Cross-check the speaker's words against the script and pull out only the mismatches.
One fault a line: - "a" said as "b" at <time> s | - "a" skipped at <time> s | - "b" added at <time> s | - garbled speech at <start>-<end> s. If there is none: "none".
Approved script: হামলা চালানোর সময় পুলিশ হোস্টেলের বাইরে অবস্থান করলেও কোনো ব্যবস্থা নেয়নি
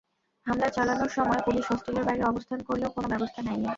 none